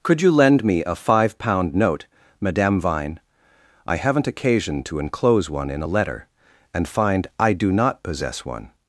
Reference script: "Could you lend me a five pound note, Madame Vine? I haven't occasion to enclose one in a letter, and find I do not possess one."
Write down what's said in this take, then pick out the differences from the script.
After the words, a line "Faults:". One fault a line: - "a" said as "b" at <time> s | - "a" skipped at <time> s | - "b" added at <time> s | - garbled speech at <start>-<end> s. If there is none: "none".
"Could you lend me a five pound note, Madame Vine? I haven't occasion to enclose one in a letter, and find I do not possess one."
Faults:
none